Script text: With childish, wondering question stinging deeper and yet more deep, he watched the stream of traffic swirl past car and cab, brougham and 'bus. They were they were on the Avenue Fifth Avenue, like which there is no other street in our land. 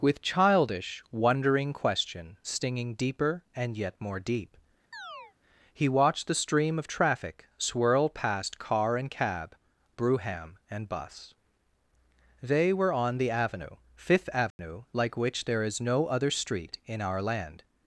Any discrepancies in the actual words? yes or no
yes